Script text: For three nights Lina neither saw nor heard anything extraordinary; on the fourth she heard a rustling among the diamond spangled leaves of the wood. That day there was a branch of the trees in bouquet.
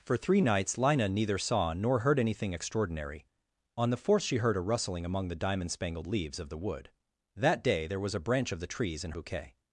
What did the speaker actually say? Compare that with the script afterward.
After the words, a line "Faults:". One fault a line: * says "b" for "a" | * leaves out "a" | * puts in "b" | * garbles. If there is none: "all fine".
For three nights Lina neither saw nor heard anything extraordinary; on the fourth she heard a rustling among the diamond spangled leaves of the wood. That day there was a branch of the trees in bouquet.
Faults:
all fine